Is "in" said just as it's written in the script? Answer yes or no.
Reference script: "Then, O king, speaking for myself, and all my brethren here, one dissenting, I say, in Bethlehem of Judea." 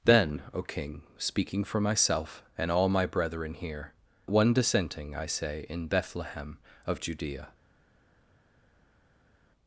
yes